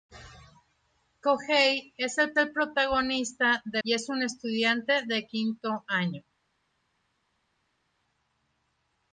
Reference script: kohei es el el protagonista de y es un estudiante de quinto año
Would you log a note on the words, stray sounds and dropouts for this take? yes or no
no